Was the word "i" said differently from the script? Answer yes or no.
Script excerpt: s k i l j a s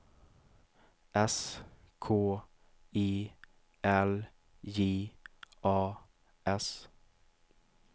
no